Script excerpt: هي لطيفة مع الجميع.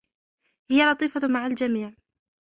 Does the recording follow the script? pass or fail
pass